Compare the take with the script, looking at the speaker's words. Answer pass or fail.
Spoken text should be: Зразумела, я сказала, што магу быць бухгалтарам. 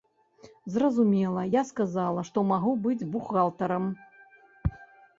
pass